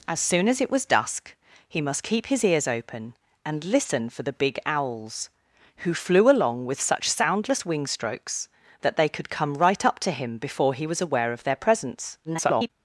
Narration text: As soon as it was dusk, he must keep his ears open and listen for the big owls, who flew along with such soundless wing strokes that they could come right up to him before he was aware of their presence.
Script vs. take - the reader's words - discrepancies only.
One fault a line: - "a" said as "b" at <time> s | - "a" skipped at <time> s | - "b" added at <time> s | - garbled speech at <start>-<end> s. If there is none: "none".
- garbled speech at 12.2-12.7 s